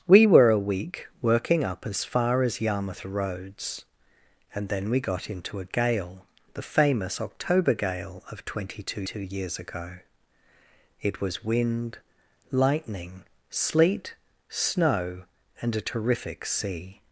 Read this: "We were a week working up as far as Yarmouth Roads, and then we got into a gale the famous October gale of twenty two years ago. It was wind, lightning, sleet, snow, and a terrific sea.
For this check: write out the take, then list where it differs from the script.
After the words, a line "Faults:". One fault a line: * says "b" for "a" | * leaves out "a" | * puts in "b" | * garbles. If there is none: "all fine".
"We were a week working up as far as Yarmouth Roads, and then we got into a gale the famous October gale of twenty two two years ago. It was wind, lightning, sleet, snow, and a terrific sea.
Faults:
* puts in "two"